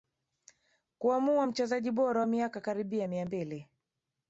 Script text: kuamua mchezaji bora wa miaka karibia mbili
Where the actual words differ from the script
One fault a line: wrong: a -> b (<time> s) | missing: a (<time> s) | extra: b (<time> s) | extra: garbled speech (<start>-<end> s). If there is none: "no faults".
extra: mia (3.1 s)